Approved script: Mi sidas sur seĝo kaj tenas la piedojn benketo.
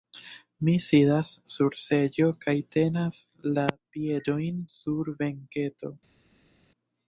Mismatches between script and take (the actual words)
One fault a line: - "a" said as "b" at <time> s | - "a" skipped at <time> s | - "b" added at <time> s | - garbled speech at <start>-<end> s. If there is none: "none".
- "sur" added at 4.8 s